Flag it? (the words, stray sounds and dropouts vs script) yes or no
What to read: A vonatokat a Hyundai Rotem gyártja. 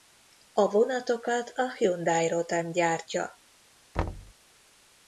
yes